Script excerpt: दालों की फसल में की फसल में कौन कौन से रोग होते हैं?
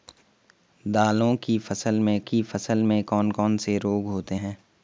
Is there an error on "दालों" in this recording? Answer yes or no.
no